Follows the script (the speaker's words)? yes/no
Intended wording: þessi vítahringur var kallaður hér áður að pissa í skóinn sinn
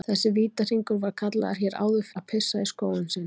yes